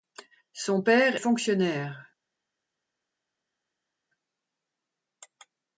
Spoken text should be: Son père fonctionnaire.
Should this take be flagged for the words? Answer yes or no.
no